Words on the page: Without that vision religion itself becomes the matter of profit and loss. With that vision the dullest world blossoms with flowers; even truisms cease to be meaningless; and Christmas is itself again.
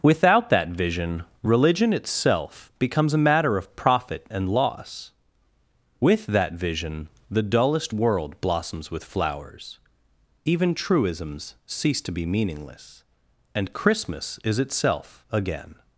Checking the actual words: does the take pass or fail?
fail